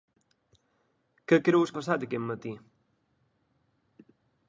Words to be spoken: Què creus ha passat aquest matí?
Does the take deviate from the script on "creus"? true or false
false